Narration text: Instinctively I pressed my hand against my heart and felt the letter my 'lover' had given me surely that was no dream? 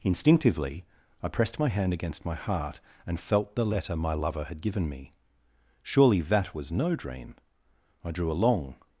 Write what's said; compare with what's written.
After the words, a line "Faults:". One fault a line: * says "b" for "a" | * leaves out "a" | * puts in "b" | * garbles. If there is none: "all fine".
Instinctively I pressed my hand against my heart and felt the letter my 'lover' had given me surely that was no dream? I drew a long
Faults:
* puts in "I drew a long"